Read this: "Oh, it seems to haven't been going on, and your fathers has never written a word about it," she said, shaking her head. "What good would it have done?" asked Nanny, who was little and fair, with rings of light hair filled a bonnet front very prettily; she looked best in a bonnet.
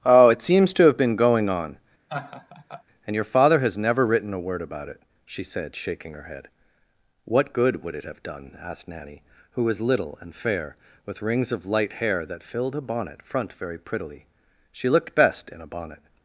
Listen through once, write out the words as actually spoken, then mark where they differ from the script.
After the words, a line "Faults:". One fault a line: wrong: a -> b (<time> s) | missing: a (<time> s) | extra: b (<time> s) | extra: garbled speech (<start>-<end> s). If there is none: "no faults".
"Oh, it seems to have been going on, and your father has never written a word about it," she said, shaking her head. "What good would it have done?" asked Nanny, who was little and fair, with rings of light hair that filled a bonnet front very prettily; she looked best in a bonnet.
Faults:
wrong: haven't -> have (0.8 s)
wrong: fathers -> father (3.2 s)
extra: that (12.2 s)